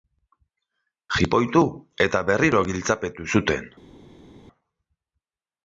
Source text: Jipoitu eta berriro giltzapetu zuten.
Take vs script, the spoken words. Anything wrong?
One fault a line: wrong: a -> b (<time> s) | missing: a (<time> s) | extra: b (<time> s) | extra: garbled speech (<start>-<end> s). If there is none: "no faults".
no faults